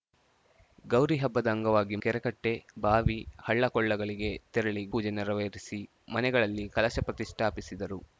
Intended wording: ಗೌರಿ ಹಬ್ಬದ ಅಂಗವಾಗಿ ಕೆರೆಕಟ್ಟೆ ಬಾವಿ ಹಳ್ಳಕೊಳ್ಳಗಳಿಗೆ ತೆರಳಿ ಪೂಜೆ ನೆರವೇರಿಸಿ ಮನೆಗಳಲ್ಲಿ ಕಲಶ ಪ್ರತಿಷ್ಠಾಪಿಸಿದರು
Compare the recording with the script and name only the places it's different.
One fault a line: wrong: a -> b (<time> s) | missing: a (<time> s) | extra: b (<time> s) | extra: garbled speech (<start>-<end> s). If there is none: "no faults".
no faults